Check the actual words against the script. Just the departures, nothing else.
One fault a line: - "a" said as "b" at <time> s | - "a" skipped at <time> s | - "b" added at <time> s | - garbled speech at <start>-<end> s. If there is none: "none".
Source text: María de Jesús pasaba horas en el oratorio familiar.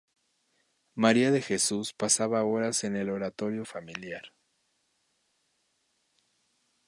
none